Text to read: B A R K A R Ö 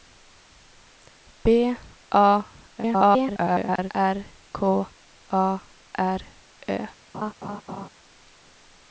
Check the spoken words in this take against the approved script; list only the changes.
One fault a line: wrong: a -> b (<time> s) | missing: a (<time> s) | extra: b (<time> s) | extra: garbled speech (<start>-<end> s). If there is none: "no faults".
extra: garbled speech (2.8-3.9 s)